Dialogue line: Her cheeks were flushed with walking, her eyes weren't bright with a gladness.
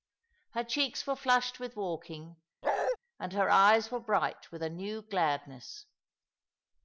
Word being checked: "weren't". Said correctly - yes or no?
no